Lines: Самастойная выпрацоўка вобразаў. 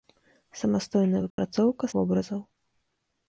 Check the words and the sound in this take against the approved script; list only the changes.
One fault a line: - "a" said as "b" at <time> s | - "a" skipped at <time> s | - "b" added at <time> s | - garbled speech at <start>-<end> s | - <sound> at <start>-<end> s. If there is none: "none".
- dropout at 1.3-1.4 s